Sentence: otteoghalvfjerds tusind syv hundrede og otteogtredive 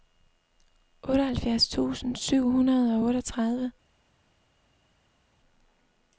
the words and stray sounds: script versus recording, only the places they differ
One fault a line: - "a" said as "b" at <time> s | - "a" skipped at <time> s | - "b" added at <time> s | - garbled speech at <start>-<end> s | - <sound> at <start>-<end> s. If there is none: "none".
none